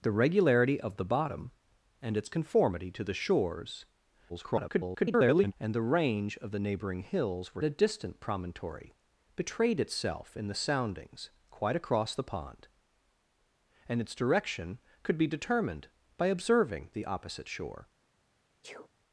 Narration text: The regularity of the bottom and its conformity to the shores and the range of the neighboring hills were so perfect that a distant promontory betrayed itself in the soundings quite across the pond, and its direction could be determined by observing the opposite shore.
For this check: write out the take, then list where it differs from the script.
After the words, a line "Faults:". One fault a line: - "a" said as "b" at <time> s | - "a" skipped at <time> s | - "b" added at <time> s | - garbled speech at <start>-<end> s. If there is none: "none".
The regularity of the bottom and its conformity to the shores [garbled] and the range of the neighboring hills were a distant promontory betrayed itself in the soundings quite across the pond, and its direction could be determined by observing the opposite shore.
Faults:
- garbled speech at 4.3-5.5 s
- "so perfect that" skipped at 7.6 s